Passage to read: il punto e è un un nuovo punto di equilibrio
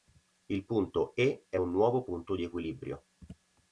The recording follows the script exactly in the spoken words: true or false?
false